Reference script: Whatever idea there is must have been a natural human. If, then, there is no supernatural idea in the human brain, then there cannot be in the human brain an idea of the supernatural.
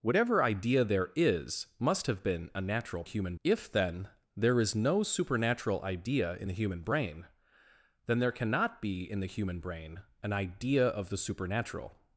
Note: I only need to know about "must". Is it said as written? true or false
true